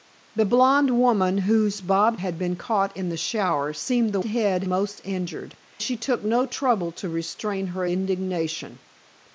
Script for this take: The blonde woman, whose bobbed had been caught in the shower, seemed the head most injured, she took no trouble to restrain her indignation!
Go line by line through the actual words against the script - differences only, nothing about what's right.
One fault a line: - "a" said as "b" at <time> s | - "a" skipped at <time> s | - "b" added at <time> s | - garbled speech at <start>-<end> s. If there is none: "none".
none